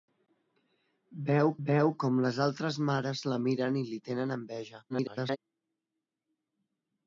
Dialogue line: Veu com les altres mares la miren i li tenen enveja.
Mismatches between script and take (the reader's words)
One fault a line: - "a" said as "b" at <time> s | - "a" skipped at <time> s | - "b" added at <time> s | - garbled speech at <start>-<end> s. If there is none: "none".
- "veu" added at 1.7 s
- garbled speech at 4.9-5.4 s